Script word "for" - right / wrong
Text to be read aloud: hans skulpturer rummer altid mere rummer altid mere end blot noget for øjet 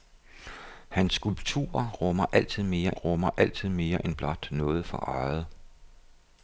right